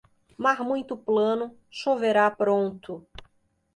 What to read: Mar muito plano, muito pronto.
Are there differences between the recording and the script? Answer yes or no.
yes